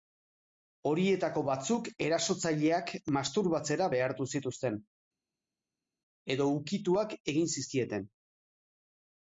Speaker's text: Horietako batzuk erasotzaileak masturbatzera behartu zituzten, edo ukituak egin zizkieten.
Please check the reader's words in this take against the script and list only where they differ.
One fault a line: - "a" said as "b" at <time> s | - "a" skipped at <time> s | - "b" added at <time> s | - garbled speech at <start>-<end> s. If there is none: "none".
none